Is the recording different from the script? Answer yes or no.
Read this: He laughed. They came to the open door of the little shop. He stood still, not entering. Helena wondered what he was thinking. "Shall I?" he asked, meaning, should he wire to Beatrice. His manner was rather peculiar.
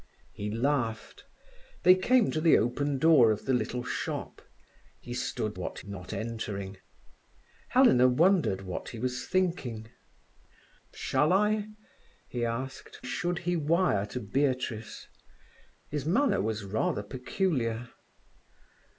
yes